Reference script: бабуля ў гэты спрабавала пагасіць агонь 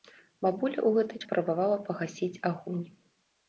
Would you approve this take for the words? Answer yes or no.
yes